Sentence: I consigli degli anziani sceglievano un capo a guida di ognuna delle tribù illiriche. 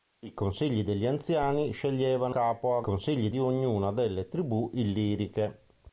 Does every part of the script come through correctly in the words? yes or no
no